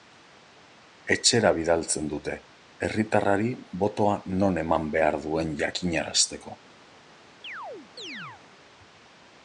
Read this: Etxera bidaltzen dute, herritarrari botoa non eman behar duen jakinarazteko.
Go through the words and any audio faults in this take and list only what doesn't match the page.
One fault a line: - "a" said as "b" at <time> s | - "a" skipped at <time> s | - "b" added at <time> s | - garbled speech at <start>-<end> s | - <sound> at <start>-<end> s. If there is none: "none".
- chirp at 7.4-8.4 s